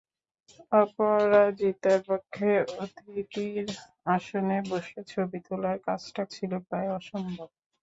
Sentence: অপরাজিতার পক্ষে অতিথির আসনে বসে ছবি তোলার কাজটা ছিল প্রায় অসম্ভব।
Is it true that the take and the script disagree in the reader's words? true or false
false